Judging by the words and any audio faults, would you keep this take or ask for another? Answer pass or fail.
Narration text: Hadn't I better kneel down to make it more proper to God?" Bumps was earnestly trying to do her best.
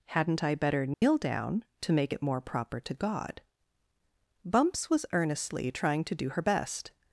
fail